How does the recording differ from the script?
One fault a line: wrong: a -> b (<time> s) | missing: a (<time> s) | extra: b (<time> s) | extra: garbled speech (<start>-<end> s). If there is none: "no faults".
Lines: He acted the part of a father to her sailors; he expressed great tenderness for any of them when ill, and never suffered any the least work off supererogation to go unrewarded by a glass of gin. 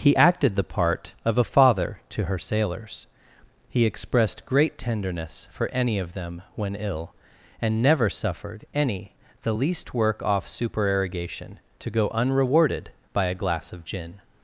no faults